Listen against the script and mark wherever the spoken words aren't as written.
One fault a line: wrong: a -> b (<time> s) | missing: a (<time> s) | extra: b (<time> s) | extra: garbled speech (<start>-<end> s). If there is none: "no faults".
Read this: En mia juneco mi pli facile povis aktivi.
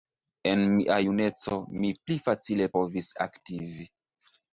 no faults